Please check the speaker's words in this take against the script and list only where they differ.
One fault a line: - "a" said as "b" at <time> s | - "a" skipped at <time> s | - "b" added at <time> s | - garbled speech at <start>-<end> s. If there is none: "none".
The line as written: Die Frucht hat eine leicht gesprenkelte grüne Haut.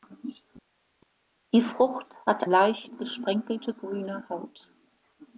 - "eine" skipped at 2.5 s